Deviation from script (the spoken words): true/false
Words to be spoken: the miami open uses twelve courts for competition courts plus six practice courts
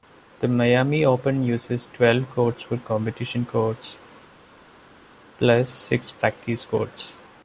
false